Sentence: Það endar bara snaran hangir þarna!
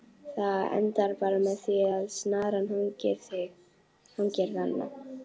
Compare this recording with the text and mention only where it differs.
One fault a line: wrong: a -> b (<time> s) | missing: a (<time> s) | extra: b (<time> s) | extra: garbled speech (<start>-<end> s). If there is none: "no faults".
extra: með því að (1.5 s)